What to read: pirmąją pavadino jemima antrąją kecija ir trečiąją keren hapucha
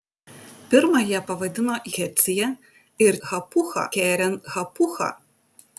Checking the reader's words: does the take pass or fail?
fail